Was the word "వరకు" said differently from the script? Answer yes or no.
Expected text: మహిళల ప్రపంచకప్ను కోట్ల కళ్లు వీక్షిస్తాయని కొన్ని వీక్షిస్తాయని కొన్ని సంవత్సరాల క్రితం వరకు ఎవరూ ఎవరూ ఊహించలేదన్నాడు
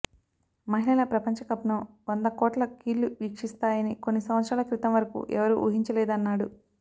no